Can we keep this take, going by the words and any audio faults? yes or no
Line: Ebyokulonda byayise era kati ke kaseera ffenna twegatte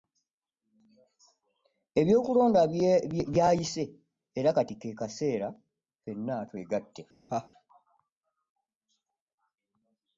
no